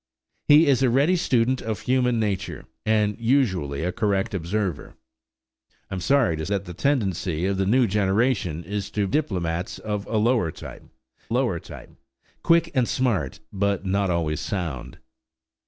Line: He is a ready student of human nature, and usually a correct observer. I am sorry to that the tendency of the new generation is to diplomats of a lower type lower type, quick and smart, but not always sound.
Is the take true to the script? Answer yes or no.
yes